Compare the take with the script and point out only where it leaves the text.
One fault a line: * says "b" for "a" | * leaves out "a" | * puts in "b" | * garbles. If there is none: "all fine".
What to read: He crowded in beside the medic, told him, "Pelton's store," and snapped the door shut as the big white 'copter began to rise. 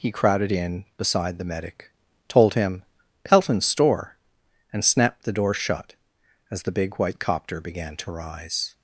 all fine